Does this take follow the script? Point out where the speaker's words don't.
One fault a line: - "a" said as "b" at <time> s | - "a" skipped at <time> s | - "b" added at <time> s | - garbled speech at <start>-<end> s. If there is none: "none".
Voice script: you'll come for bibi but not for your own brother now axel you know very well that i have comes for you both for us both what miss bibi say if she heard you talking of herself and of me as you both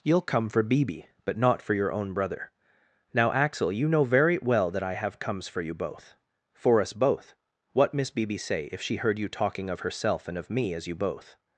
none